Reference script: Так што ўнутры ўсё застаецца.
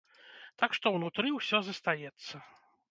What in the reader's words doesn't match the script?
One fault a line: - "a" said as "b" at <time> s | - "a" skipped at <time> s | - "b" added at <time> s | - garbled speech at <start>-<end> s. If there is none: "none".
none